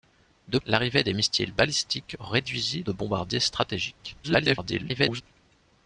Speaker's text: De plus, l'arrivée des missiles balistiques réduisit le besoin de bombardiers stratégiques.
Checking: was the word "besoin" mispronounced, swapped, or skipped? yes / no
yes